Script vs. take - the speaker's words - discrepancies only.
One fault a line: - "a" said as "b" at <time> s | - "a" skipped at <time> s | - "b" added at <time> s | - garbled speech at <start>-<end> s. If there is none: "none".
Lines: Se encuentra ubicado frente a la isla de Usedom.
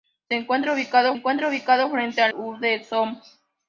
- "encuentra ubicado" added at 1.1 s
- "la isla de" skipped at 2.3 s